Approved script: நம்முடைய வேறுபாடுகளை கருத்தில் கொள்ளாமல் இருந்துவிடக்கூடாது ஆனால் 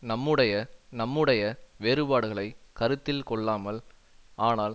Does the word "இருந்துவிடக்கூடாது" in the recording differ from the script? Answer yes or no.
yes